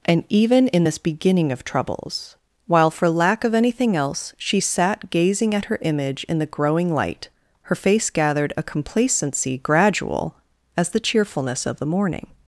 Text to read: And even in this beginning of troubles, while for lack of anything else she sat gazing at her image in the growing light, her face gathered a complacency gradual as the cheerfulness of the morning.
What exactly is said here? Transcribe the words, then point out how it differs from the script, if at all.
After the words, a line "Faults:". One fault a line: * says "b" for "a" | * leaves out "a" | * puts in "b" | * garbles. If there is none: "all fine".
And even in this beginning of troubles, while for lack of anything else she sat gazing at her image in the growing light, her face gathered a complacency gradual as the cheerfulness of the morning.
Faults:
all fine